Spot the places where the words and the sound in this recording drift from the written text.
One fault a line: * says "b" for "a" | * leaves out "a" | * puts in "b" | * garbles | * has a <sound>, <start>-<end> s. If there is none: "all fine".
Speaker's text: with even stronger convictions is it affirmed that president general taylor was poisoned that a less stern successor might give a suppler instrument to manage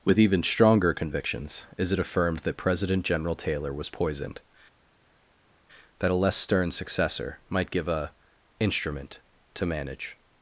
* leaves out "suppler"